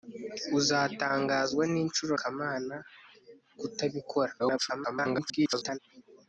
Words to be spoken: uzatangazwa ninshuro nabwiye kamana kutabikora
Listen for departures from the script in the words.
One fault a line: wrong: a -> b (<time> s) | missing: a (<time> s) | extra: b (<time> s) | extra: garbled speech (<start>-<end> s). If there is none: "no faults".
missing: nabwiye (2.1 s)
extra: garbled speech (4.4-5.8 s)